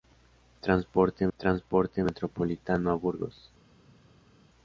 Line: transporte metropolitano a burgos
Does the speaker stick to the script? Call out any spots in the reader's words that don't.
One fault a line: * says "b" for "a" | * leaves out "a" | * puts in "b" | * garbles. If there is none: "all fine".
* puts in "transporte"